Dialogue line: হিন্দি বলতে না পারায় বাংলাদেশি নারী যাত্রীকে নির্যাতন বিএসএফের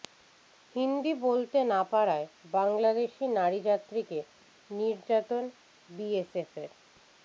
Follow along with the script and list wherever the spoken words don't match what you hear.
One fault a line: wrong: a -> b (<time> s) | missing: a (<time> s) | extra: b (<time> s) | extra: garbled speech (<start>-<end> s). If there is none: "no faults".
no faults